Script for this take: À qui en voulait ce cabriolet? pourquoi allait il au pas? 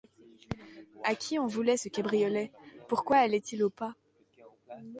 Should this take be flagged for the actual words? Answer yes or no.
no